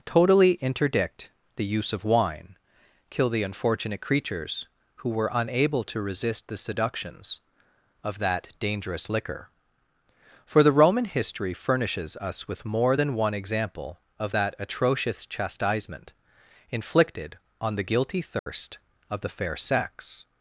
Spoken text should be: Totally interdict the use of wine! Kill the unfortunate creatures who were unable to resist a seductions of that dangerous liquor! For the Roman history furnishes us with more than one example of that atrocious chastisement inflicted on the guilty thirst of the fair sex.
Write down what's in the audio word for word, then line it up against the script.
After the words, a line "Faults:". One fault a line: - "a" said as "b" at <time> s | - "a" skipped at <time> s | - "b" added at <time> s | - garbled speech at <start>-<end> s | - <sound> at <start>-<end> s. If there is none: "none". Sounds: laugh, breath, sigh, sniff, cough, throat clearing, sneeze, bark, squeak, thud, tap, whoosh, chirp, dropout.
Totally interdict the use of wine! Kill the unfortunate creatures who were unable to resist the seductions of that dangerous liquor! For the Roman history furnishes us with more than one example of that atrocious chastisement inflicted on the guilty thirst of the fair sex.
Faults:
- "a" said as "the" at 6.5 s
- dropout at 18.4-18.5 s